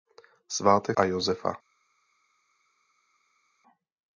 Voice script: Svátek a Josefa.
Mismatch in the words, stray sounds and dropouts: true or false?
false